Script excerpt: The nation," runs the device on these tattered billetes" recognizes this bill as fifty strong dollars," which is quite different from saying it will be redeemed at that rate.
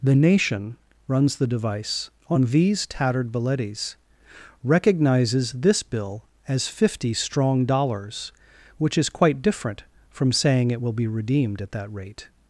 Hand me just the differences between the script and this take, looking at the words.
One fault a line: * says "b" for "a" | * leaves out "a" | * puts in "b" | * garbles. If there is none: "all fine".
all fine